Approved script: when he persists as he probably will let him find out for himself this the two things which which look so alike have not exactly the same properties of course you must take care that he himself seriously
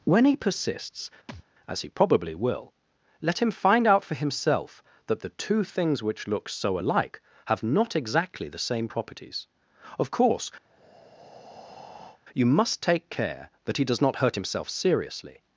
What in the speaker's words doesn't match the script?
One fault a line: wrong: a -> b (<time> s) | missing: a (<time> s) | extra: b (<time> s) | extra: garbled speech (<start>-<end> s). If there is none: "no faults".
wrong: this -> that (5.1 s)
missing: which (6.3 s)
extra: does not hurt (13.8 s)